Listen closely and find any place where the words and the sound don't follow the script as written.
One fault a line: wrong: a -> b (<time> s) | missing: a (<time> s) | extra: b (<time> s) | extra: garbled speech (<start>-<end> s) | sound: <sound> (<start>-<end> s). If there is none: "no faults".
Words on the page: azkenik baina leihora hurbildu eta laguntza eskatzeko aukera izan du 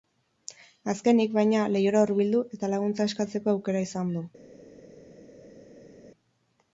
no faults